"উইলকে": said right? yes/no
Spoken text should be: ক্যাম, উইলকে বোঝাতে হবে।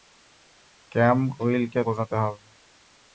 yes